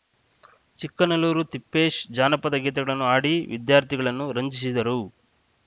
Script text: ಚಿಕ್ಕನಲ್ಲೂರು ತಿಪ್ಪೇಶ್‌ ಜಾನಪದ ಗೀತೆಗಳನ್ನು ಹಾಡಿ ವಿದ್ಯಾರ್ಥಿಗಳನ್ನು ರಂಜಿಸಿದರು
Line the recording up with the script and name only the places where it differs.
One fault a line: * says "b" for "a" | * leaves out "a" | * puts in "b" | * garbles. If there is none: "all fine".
all fine